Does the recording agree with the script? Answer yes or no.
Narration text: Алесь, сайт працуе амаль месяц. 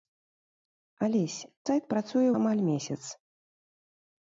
yes